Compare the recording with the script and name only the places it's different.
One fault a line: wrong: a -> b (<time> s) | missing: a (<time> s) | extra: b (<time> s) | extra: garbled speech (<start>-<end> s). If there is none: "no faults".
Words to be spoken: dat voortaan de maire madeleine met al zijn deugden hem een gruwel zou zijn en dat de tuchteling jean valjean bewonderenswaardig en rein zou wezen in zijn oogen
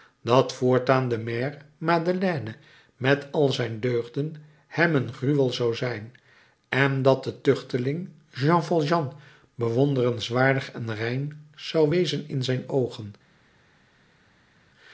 no faults